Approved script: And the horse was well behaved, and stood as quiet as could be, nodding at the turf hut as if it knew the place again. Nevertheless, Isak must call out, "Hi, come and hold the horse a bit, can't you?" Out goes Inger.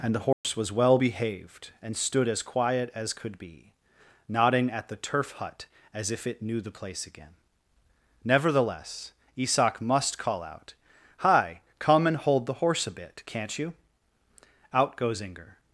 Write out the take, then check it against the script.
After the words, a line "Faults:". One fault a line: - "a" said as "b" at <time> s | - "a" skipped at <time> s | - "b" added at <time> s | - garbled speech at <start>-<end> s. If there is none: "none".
And the horse was well behaved, and stood as quiet as could be, nodding at the turf hut as if it knew the place again. Nevertheless, Isak must call out, "Hi, come and hold the horse a bit, can't you?" Out goes Inger.
Faults:
none